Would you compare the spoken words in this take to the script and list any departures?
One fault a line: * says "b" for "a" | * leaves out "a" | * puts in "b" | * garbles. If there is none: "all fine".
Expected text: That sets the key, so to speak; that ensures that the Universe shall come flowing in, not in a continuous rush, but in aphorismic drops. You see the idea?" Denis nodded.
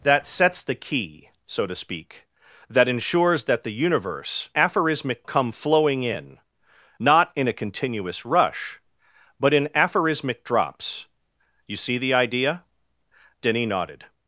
* says "aphorismic" for "shall"